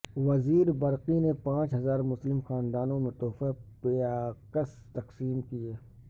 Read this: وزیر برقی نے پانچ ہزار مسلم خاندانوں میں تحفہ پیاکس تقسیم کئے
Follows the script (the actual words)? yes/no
yes